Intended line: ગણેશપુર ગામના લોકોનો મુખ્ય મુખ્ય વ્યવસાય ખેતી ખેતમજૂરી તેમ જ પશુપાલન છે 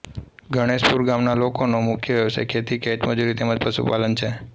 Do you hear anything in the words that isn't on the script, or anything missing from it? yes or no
yes